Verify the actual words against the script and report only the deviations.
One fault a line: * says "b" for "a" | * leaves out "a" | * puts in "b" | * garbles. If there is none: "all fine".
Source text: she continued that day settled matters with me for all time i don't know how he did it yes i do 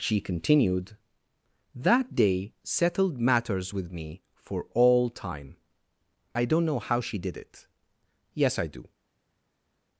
* says "she" for "he"